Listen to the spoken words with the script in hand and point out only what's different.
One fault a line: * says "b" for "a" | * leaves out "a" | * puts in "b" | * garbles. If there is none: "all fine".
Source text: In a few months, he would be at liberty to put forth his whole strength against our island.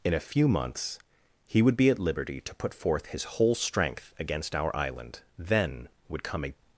* puts in "Then would come a"